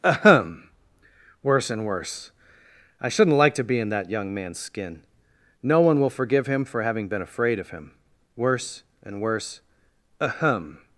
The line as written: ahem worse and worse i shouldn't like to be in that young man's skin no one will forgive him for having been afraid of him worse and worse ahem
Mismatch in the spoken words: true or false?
false